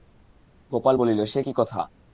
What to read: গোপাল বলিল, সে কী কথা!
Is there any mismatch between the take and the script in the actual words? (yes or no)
no